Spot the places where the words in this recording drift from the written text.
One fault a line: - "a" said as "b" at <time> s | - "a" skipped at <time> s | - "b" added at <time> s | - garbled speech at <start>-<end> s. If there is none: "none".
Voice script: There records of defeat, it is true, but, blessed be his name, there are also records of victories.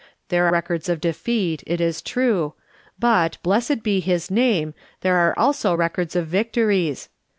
none